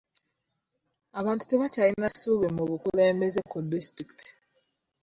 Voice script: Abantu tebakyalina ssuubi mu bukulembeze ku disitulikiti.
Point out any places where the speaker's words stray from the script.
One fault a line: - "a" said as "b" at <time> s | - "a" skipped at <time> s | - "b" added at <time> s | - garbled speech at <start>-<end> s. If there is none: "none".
none